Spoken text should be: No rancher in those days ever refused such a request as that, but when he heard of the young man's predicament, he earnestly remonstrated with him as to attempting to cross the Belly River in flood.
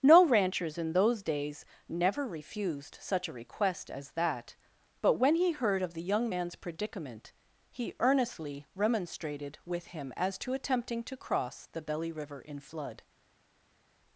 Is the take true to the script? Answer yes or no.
no